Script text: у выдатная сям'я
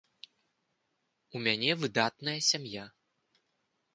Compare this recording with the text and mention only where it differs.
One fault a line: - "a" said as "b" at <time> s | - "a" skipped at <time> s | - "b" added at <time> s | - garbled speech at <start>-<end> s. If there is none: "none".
- "мяне" added at 1.5 s